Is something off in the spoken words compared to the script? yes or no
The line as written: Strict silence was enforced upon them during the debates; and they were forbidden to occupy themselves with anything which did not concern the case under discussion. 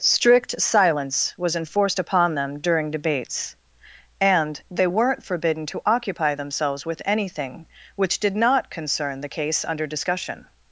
yes